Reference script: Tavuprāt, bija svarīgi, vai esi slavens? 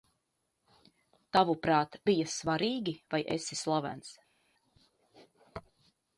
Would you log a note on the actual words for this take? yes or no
no